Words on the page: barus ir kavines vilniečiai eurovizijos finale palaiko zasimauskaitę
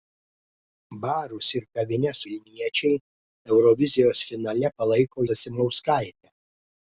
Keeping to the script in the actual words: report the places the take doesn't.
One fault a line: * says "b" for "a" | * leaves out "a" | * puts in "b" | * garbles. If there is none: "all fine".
all fine